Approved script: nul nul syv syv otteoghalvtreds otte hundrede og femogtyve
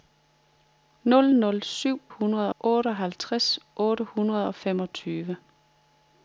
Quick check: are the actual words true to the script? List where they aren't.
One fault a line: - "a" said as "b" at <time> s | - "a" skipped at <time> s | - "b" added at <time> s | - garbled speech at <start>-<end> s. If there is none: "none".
- "syv" said as "hundrede" at 2.1 s